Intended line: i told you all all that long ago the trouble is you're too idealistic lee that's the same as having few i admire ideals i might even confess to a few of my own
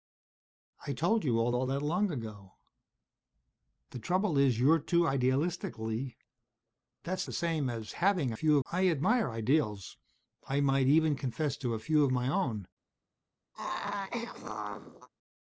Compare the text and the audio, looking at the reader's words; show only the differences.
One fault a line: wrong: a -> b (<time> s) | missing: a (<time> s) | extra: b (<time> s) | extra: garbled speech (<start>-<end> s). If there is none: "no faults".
no faults